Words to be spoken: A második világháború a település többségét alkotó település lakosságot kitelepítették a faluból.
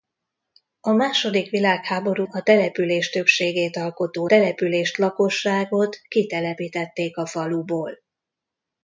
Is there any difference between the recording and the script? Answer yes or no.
no